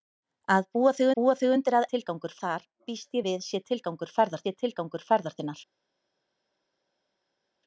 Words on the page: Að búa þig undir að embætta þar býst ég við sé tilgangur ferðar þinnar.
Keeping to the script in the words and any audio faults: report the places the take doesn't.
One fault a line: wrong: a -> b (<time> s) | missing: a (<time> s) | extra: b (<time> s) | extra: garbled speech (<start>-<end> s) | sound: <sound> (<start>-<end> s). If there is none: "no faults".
extra: búa þig (1.2 s)
wrong: embætta -> tilgangur (1.9 s)
extra: sé tilgangur ferðar (4.4 s)